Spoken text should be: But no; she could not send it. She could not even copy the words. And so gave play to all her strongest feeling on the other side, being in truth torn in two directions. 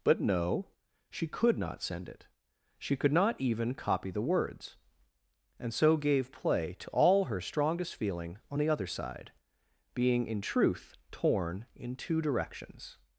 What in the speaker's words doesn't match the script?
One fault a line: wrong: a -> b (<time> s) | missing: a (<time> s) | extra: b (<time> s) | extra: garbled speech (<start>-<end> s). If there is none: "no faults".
no faults